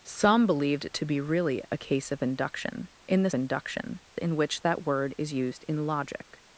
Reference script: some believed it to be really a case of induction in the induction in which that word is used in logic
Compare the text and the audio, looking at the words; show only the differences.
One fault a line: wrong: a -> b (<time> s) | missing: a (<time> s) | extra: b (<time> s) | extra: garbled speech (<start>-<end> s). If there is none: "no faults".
no faults